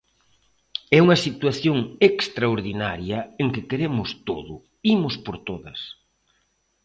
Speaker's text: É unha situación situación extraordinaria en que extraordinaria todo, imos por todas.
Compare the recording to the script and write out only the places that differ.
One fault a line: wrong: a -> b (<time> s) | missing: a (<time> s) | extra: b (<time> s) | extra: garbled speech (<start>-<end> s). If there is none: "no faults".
missing: situación (1.8 s)
wrong: extraordinaria -> queremos (3.7 s)